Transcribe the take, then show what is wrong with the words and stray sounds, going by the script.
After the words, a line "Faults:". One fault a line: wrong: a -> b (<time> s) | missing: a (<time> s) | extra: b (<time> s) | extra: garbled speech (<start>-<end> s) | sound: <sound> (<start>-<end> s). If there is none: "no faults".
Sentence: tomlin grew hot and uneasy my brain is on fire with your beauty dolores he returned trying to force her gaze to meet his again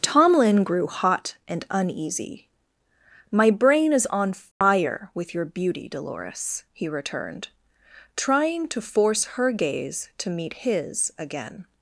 tomlin grew hot and uneasy my brain is on fire with your beauty dolores he returned trying to force her gaze to meet his again
Faults:
sound: dropout (4.5-4.6 s)